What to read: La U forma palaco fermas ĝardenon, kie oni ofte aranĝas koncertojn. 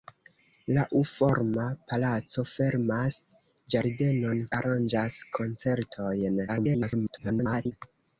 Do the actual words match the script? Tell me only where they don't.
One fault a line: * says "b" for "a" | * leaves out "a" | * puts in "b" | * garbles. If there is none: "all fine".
* leaves out "kie oni ofte"
* garbles